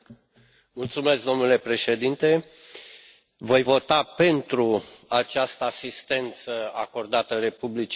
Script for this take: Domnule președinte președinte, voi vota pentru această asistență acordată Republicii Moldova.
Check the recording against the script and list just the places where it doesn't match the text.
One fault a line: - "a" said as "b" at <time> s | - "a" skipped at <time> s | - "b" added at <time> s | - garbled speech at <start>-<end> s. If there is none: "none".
- "președinte" skipped at 2.5 s